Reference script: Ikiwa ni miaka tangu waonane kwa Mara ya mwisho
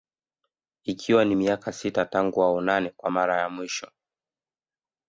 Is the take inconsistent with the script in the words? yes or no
yes